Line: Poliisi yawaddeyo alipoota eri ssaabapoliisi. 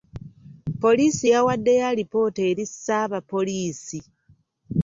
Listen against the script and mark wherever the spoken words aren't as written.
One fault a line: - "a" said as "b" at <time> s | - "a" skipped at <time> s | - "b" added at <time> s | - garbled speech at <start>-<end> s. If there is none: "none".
none